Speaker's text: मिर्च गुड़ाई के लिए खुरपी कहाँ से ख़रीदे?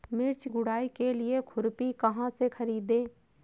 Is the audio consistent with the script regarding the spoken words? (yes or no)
yes